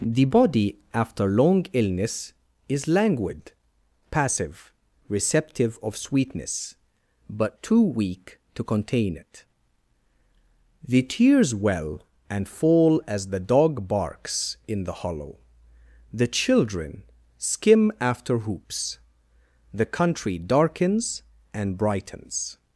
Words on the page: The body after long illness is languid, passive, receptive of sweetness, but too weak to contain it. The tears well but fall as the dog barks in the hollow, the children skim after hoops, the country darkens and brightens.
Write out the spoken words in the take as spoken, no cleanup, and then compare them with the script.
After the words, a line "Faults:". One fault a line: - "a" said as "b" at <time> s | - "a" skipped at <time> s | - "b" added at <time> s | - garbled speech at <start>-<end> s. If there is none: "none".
The body after long illness is languid, passive, receptive of sweetness, but too weak to contain it. The tears well and fall as the dog barks in the hollow, the children skim after hoops, the country darkens and brightens.
Faults:
- "but" said as "and" at 12.3 s